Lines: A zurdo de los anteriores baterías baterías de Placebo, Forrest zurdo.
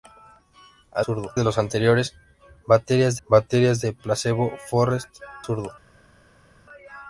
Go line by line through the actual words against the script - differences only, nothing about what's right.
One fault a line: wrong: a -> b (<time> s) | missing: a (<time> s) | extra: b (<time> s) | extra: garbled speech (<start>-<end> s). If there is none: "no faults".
no faults